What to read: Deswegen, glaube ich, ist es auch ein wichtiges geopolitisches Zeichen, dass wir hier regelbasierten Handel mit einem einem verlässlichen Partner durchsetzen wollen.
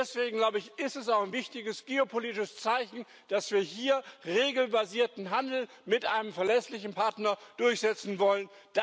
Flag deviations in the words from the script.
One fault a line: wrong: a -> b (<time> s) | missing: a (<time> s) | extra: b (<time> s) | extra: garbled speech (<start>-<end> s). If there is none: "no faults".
missing: einem (6.3 s)